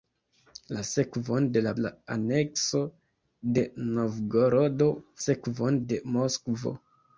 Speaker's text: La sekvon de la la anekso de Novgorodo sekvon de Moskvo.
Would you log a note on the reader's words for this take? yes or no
no